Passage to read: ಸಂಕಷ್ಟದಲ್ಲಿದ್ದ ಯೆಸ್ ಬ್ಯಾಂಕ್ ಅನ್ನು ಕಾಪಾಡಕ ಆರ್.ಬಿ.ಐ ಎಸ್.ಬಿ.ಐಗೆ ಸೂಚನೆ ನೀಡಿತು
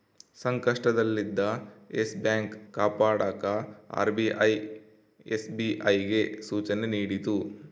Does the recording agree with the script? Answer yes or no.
no